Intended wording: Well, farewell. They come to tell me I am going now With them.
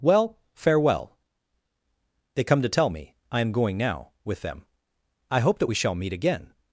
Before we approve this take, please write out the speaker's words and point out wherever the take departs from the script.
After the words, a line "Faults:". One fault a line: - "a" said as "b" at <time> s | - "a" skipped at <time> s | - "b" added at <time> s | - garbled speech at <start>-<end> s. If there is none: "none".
Well, farewell. They come to tell me I am going now With them. I hope that we shall meet again
Faults:
- "I hope that we shall meet again" added at 5.3 s